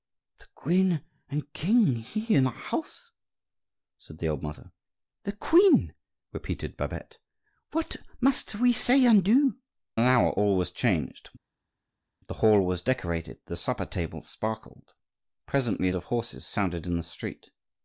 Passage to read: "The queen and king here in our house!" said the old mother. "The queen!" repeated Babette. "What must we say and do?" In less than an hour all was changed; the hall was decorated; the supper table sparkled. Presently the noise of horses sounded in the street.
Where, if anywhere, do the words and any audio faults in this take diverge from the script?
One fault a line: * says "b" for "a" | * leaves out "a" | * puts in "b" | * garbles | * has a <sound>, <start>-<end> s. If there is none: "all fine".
* leaves out "In less than"
* leaves out "the noise"